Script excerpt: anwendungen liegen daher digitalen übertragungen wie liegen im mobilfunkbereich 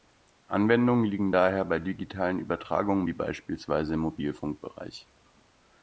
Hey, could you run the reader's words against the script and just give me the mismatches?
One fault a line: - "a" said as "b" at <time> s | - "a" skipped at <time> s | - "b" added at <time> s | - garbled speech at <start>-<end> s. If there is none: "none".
- "bei" added at 1.6 s
- "liegen" said as "beispielsweise" at 3.1 s